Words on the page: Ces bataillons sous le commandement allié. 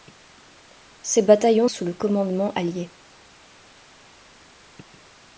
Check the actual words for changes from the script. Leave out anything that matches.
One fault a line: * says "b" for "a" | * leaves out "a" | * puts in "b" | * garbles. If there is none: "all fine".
all fine